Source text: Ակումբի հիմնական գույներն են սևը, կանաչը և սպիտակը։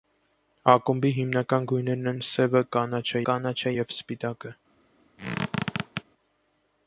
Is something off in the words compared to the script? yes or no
yes